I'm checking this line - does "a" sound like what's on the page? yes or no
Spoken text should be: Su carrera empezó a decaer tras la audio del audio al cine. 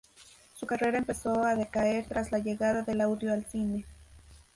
yes